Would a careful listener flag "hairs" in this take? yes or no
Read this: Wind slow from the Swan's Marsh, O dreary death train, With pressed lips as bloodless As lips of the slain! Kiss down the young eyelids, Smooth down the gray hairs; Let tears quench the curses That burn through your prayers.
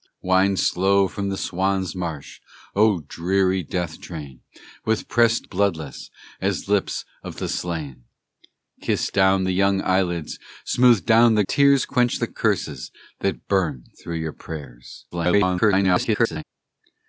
yes